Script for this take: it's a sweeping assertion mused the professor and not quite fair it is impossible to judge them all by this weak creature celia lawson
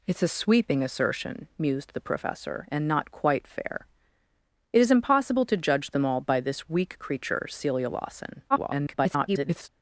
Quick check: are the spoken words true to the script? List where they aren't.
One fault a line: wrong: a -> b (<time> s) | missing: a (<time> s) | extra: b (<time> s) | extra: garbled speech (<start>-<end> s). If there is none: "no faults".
extra: garbled speech (8.5-9.7 s)